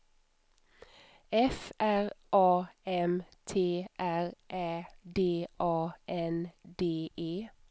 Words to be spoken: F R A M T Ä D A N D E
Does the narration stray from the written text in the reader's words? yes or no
yes